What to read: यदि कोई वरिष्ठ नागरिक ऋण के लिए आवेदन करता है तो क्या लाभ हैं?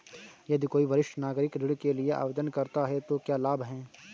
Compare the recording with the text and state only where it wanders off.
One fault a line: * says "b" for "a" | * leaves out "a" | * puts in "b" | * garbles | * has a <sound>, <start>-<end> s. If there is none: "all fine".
all fine